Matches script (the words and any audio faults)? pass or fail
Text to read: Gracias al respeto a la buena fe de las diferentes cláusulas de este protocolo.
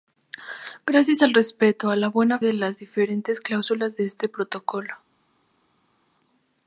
fail